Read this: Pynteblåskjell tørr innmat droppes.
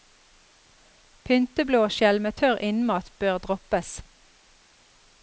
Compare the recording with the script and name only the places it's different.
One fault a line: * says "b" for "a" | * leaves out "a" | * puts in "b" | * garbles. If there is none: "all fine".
* puts in "med"
* puts in "bør"